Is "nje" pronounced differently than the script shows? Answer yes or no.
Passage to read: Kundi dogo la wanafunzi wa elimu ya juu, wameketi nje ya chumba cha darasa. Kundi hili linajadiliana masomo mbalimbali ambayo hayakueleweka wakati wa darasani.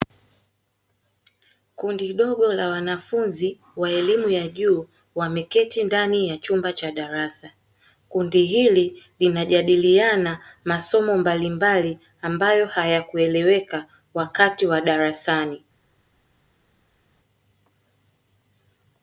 yes